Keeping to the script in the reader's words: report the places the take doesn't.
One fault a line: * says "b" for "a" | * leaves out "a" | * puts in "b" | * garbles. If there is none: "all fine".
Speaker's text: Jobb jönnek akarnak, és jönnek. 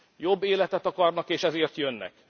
* says "életet" for "jönnek"
* puts in "ezért"